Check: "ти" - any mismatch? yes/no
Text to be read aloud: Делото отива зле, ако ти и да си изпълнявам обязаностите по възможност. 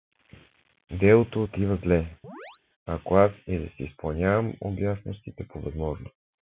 yes